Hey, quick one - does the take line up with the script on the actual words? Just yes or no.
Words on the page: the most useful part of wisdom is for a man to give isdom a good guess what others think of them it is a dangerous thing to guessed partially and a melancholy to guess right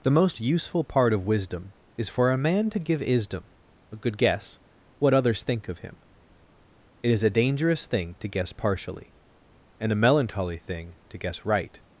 no